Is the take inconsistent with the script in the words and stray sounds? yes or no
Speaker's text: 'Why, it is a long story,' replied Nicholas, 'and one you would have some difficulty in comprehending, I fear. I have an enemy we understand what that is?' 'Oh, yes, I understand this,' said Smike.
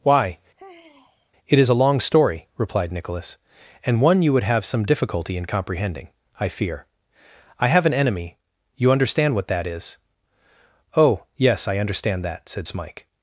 yes